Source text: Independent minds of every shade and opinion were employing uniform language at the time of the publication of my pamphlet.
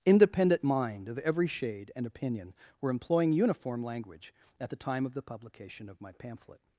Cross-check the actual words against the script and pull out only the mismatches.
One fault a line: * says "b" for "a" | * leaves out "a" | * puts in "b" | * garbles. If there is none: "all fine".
* says "mind" for "minds"